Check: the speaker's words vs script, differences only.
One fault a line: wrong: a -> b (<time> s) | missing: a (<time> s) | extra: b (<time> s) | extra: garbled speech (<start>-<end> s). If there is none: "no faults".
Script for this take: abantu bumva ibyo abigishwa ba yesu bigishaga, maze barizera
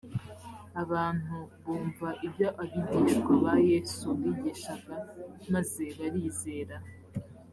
no faults